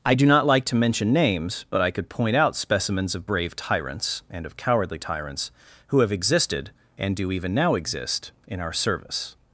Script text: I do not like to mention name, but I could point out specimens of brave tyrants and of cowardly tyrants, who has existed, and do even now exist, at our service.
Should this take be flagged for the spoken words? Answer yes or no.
yes